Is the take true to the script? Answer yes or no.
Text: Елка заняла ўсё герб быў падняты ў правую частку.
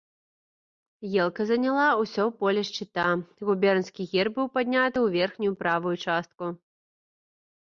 no